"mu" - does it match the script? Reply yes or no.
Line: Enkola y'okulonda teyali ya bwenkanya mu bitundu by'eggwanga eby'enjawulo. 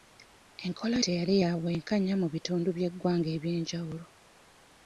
yes